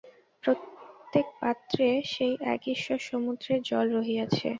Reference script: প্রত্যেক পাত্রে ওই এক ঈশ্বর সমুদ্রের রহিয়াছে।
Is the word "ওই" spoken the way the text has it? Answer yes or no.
no